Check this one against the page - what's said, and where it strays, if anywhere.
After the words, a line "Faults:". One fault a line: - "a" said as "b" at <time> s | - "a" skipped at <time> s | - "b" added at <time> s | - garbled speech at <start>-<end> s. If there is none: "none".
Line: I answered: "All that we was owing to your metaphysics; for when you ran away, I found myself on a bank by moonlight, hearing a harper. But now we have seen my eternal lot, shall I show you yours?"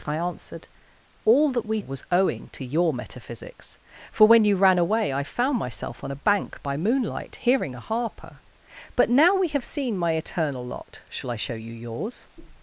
I answered: "All that we was owing to your metaphysics; for when you ran away, I found myself on a bank by moonlight, hearing a harper. But now we have seen my eternal lot, shall I show you yours?"
Faults:
none